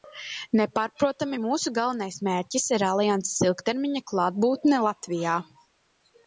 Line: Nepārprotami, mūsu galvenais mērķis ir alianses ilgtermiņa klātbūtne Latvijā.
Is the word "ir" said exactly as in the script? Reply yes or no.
yes